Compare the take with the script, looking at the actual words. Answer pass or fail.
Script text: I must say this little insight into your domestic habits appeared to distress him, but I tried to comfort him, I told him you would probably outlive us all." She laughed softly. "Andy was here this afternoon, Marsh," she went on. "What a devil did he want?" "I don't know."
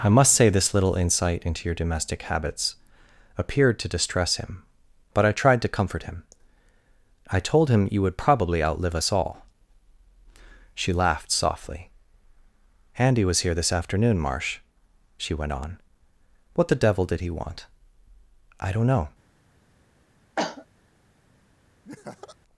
fail